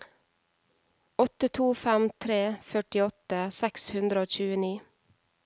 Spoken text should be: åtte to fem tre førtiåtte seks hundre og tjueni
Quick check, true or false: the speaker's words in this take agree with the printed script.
true